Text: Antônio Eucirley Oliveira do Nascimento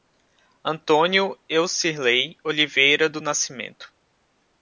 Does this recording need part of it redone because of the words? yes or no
no